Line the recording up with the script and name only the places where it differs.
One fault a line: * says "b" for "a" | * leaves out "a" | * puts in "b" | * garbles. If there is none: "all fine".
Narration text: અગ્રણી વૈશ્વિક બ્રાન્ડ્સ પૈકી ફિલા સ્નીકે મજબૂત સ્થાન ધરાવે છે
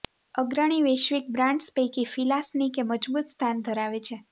all fine